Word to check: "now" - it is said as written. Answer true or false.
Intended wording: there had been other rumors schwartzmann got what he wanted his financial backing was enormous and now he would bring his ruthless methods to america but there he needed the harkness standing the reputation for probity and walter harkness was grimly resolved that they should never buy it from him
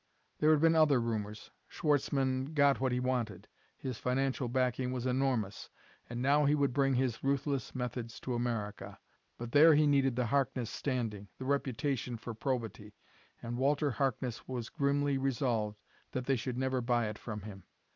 true